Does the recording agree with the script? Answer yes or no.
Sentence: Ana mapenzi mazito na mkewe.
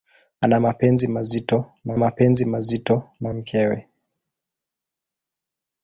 no